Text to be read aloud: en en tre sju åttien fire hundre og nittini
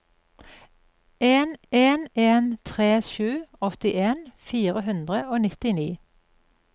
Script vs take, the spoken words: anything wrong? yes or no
yes